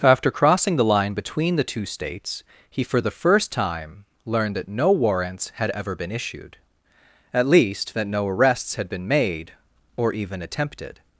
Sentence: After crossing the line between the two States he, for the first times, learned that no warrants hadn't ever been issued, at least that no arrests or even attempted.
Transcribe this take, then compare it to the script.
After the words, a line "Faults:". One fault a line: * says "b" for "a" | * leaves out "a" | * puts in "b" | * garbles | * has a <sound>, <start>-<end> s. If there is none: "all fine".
After crossing the line between the two States he, for the first time, learned that no warrants had ever been issued, at least that no arrests had been made or even attempted.
Faults:
* says "time" for "times"
* says "had" for "hadn't"
* puts in "had been made"